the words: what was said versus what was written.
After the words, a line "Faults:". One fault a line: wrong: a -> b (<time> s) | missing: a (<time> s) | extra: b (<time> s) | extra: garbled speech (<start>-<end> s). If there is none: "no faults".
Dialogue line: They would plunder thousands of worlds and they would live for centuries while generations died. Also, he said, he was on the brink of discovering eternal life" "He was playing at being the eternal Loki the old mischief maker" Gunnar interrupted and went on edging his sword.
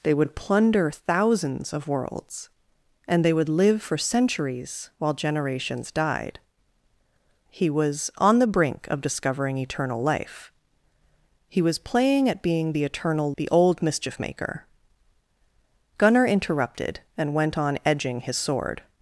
They would plunder thousands of worlds and they would live for centuries while generations died. He was on the brink of discovering eternal life" "He was playing at being the eternal The old mischief maker" Gunnar interrupted and went on edging his sword.
Faults:
missing: Also (6.4 s)
missing: said he (7.7 s)
missing: Loki (13.3 s)